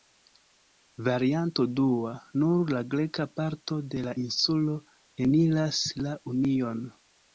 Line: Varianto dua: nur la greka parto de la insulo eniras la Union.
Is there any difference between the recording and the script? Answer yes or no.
no